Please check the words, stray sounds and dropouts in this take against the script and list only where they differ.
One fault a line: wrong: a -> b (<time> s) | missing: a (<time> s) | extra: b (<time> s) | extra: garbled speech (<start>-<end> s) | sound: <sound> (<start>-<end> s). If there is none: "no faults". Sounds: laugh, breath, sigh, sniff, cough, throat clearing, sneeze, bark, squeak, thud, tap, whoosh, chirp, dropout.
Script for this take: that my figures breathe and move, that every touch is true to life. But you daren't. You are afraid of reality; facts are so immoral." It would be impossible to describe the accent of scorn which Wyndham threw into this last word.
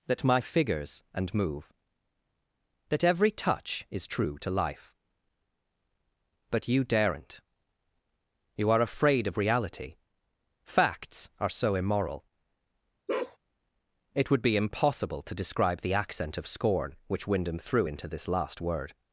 missing: breathe (1.0 s)
sound: bark (13.1-13.4 s)